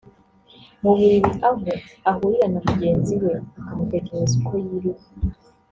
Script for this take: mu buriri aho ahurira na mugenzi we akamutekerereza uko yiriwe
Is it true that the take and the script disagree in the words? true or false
false